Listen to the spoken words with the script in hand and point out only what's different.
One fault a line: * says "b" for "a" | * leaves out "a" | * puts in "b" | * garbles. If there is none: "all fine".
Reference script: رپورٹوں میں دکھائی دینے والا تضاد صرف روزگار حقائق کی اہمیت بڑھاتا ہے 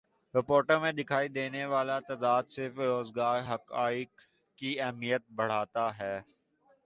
all fine